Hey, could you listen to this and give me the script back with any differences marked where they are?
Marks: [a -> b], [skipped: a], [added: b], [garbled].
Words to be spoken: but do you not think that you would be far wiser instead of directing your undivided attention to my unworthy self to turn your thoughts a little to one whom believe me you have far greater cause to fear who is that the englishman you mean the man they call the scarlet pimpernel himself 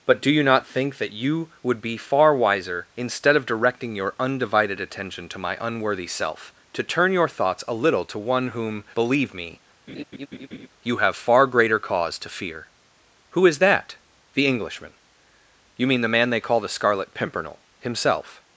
but do you not think that you would be far wiser instead of directing your undivided attention to my unworthy self to turn your thoughts a little to one whom believe me you have far greater cause to fear who is that the englishman you mean the man they call the scarlet pimpernel himself